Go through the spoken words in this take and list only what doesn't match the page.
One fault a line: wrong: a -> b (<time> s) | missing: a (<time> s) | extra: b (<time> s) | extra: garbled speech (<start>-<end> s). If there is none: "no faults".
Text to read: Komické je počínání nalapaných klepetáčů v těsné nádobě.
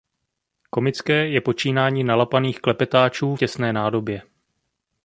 missing: v (3.4 s)